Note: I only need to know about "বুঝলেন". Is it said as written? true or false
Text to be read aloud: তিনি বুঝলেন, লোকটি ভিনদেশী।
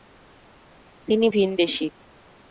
false